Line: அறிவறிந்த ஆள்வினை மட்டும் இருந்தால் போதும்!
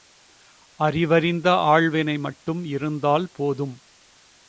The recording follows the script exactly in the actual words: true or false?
true